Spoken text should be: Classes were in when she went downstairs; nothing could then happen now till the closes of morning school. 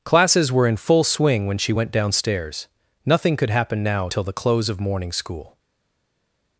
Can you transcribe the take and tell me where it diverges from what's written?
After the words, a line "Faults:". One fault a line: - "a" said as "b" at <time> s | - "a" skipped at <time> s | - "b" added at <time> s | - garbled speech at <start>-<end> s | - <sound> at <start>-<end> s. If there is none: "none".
Classes were in full swing when she went downstairs; nothing could happen now till the close of morning school.
Faults:
- "full swing" added at 0.8 s
- "then" skipped at 3.5 s
- "closes" said as "close" at 4.3 s